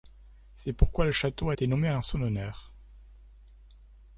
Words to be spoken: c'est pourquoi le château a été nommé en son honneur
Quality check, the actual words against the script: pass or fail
pass